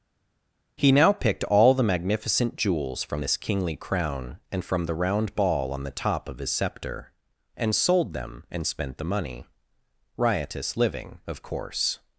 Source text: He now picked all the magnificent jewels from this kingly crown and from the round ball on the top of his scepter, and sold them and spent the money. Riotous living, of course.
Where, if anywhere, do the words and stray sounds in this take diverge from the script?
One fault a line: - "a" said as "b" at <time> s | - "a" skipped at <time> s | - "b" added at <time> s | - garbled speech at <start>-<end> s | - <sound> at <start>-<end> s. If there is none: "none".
none